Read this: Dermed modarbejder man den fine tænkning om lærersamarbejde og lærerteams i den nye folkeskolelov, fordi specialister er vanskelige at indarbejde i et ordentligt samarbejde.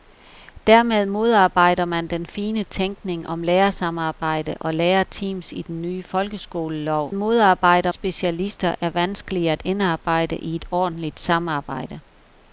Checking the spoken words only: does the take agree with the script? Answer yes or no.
no